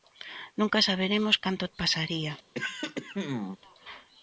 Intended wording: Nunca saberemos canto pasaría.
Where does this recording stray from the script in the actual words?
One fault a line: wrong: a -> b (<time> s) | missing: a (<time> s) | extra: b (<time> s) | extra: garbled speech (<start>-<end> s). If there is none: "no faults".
no faults